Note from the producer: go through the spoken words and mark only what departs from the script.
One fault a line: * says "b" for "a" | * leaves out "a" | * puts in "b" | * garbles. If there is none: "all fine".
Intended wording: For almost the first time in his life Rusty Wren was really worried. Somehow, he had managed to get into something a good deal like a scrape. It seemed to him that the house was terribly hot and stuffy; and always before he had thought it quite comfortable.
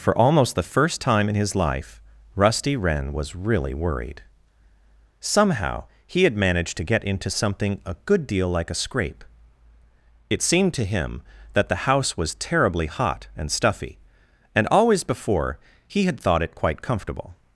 all fine